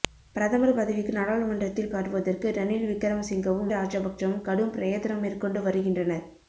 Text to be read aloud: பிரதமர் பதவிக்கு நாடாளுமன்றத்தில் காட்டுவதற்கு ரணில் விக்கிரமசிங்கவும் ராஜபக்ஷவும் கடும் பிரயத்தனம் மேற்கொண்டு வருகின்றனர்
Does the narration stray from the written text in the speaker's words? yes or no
no